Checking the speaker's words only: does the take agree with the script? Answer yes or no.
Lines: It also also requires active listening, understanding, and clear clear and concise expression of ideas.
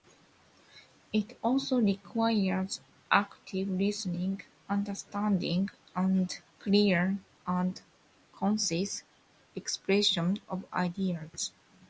no